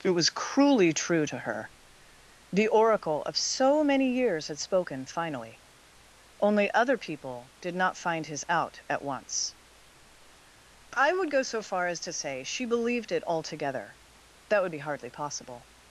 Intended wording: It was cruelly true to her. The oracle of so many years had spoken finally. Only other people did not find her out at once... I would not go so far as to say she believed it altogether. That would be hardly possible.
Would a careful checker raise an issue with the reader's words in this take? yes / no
yes